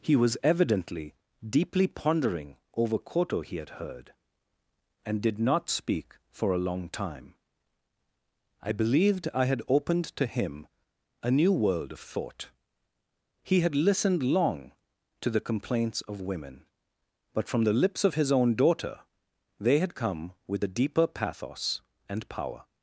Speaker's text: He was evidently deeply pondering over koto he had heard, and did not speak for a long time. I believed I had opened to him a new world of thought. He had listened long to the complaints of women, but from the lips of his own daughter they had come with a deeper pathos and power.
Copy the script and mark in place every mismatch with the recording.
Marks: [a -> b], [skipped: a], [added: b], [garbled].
He was evidently deeply pondering over koto he had heard, and did not speak for a long time. I believed I had opened to him a new world of thought. He had listened long to the complaints of women, but from the lips of his own daughter they had come with a deeper pathos and power.